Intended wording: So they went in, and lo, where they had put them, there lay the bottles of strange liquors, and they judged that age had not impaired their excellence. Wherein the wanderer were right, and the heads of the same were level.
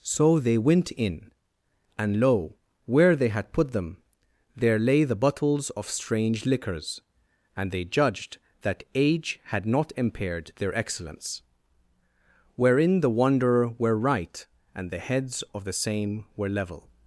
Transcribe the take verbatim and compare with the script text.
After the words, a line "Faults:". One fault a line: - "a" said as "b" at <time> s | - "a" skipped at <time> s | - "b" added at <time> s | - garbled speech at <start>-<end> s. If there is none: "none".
So they went in, and lo, where they had put them, there lay the bottles of strange liquors, and they judged that age had not impaired their excellence. Wherein the wanderer were right, and the heads of the same were level.
Faults:
none